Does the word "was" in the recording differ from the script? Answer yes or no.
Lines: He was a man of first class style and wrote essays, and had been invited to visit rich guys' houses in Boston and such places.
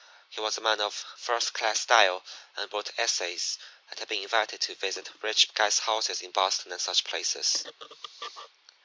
no